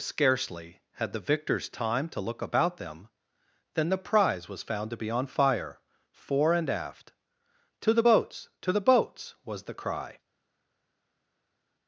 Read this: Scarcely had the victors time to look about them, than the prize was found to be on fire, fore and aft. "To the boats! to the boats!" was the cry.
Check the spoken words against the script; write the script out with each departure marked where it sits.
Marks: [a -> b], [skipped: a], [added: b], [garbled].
Scarcely had the victors time to look about them, than the prize was found to be on fire, fore and aft. "To the boats! to the boats!" was the cry.